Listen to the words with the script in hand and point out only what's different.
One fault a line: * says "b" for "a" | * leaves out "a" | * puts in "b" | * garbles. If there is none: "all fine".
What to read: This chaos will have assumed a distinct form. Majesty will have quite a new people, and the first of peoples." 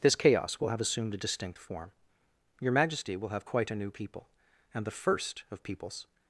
* puts in "Your"